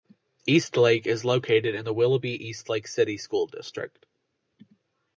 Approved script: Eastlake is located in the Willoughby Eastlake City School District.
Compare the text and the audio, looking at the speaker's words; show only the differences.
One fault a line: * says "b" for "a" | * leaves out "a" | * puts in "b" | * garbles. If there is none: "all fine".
all fine